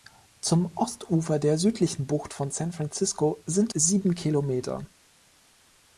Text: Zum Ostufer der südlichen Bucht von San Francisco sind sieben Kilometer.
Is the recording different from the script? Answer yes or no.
no